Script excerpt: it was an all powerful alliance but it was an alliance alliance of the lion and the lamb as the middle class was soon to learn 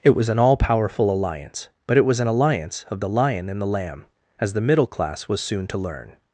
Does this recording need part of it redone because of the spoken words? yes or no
yes